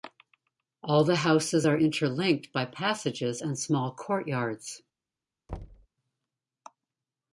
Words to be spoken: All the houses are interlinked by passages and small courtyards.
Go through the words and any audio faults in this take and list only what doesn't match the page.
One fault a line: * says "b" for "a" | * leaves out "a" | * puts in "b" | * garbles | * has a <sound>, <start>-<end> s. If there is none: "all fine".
* has a thud, 5.5-5.9 s